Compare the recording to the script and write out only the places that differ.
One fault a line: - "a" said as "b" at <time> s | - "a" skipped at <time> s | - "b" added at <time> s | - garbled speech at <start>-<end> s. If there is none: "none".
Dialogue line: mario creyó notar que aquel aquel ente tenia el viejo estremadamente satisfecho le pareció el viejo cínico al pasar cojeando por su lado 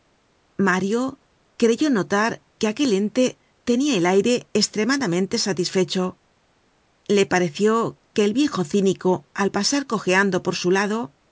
- "aquel" skipped at 2.9 s
- "viejo" said as "aire" at 4.0 s
- "que" added at 8.1 s